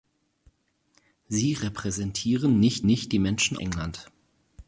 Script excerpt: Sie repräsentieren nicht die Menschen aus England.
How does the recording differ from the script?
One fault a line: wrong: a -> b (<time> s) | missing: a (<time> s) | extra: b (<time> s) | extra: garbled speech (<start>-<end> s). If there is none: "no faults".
extra: nicht (2.9 s)
missing: aus (3.6 s)